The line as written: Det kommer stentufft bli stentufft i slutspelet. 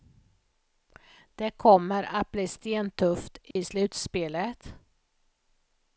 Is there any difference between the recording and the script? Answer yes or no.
yes